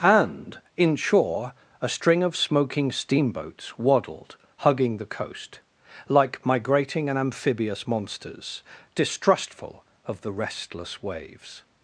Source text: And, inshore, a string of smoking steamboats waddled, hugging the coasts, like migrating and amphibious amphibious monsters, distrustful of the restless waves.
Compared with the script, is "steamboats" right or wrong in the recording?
right